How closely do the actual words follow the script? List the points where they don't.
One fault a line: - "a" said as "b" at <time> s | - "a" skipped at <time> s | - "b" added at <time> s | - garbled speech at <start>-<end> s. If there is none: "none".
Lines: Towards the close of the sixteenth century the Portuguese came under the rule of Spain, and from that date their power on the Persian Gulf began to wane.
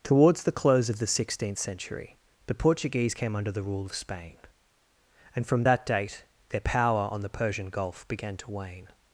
none